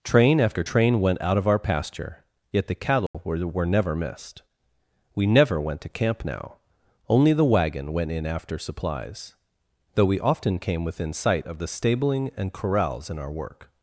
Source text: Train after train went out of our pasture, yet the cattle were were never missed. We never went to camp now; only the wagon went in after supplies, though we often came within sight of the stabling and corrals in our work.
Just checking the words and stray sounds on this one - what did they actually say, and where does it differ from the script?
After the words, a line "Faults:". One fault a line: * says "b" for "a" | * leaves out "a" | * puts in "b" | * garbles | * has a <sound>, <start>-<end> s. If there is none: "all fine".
Train after train went out of our pasture, yet the cattle were were never missed. We never went to camp now; only the wagon went in after supplies, though we often came within sight of the stabling and corrals in our work.
Faults:
* has a dropout, 3.1-3.1 s